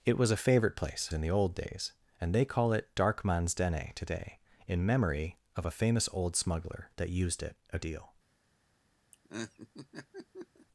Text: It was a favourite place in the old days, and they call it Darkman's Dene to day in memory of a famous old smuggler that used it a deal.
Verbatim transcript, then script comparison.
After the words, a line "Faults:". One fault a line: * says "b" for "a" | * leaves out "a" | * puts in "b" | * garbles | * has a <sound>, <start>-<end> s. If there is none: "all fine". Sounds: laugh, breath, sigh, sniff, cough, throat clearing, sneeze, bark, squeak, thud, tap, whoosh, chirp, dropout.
It was a favourite place in the old days, and they call it Darkman's Dene to day in memory of a famous old smuggler that used it a deal.
Faults:
* has a laugh, 9.1-10.7 s